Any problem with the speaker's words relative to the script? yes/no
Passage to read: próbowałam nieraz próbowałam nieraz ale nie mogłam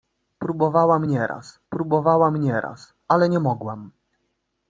no